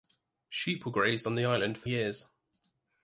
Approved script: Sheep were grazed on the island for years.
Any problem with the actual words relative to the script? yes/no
no